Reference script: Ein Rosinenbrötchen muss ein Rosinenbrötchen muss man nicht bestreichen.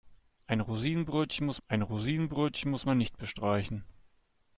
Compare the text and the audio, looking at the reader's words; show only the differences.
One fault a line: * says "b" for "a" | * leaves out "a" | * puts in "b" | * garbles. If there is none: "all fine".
all fine